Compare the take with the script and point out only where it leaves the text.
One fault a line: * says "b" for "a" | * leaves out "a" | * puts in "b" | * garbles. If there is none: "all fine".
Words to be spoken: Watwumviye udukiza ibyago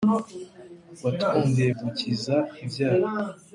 all fine